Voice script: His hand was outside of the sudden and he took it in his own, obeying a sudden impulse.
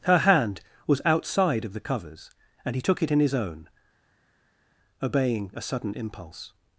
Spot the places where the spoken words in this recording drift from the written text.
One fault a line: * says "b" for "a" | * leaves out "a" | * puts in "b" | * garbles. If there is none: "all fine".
* says "Her" for "His"
* says "covers" for "sudden"